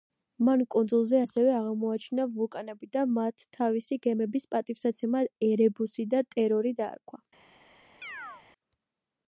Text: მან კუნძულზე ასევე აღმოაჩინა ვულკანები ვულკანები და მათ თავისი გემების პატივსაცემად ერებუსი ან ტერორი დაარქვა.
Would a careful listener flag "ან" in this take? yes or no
yes